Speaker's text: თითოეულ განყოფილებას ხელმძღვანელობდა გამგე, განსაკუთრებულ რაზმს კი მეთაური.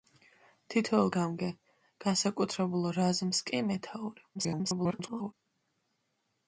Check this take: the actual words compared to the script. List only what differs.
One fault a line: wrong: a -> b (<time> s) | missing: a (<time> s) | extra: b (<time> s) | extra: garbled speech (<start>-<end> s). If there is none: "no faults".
missing: განყოფილებას ხელმძღვანელობდა (1.1 s)
extra: garbled speech (4.3-5.3 s)